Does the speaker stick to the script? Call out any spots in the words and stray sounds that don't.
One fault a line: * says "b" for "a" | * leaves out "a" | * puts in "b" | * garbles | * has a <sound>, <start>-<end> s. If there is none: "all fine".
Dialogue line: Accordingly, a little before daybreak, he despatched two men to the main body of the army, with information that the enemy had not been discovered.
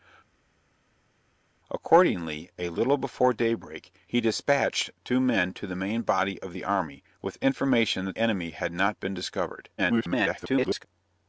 * leaves out "the"
* garbles